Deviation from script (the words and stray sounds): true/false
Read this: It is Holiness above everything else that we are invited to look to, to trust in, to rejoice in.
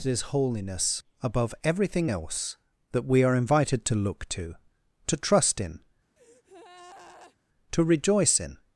true